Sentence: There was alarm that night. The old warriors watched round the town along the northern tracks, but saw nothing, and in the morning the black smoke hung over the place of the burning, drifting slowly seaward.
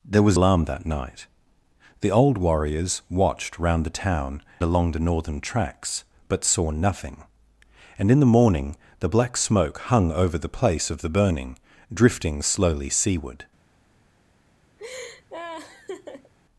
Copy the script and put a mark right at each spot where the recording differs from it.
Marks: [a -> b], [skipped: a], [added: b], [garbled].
There was alarm that night. The old warriors watched round the town along the northern tracks, but saw nothing, and in the morning the black smoke hung over the place of the burning, drifting slowly seaward.